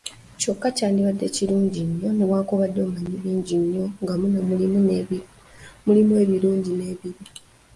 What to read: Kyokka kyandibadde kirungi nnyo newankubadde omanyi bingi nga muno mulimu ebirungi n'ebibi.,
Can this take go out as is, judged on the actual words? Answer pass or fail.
fail